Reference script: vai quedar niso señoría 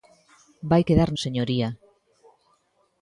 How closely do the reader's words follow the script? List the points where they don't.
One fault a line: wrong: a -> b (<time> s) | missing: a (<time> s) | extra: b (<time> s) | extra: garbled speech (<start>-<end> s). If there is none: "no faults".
missing: niso (1.1 s)